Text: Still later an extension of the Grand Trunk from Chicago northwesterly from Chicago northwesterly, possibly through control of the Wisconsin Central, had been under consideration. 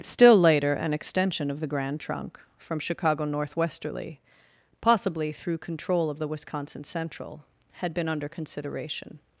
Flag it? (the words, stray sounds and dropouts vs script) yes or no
yes